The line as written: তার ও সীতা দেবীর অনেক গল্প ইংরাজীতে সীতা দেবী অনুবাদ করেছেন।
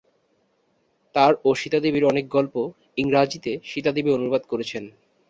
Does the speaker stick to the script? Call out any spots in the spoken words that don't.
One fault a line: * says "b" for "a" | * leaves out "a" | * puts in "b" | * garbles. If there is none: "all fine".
all fine